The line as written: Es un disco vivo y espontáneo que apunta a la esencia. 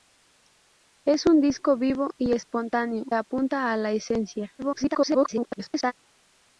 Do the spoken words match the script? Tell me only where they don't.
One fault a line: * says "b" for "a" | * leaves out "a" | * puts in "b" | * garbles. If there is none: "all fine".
* leaves out "que"
* garbles